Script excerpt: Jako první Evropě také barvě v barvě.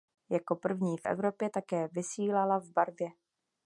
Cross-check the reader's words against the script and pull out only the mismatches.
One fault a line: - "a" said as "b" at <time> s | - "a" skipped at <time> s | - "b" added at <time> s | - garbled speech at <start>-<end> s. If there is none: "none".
- "v" added at 1.0 s
- "barvě" said as "vysílala" at 1.9 s